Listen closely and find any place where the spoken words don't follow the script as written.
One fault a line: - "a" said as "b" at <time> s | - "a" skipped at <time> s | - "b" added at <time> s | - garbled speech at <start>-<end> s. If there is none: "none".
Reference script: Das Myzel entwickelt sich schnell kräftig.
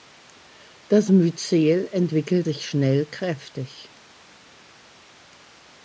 none